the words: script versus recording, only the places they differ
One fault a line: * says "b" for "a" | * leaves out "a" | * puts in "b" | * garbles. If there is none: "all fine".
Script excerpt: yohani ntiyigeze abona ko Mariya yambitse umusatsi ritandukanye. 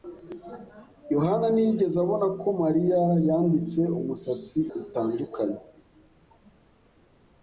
all fine